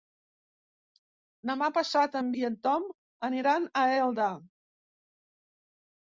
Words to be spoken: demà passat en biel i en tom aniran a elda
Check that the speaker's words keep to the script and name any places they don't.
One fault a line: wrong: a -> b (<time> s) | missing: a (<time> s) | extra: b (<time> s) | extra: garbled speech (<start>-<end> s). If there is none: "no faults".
missing: biel (2.3 s)